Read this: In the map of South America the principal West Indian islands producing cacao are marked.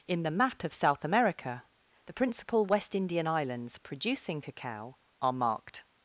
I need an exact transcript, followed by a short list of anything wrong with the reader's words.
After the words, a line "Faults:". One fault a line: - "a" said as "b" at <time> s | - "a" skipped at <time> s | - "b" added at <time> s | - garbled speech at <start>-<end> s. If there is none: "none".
In the map of South America the principal West Indian islands producing cacao are marked.
Faults:
none